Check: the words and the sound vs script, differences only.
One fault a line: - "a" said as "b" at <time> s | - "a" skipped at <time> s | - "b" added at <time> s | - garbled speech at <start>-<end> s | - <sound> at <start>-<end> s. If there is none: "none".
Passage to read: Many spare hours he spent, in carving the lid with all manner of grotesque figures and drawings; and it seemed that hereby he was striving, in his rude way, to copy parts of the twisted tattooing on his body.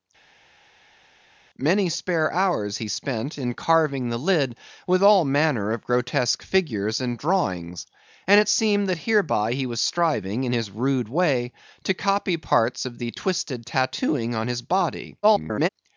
- garbled speech at 15.2-15.7 s